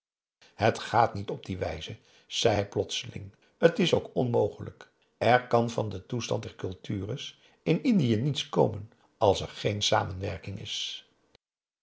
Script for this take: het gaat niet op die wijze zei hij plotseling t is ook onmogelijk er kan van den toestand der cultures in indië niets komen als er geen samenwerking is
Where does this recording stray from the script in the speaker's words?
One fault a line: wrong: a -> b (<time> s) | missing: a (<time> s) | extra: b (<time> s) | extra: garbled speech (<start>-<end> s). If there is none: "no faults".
no faults